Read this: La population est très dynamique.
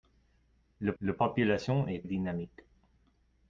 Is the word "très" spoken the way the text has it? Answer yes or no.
no